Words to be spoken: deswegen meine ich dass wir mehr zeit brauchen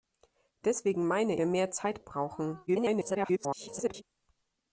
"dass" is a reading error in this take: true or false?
true